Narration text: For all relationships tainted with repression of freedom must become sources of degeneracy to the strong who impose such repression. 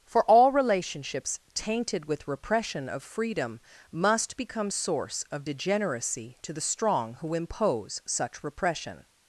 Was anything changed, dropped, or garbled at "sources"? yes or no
yes